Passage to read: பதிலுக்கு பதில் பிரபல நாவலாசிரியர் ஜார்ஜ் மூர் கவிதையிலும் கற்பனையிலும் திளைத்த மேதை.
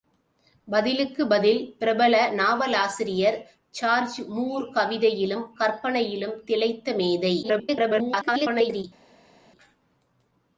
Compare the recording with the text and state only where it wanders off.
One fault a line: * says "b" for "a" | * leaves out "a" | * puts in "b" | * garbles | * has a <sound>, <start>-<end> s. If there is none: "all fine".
* garbles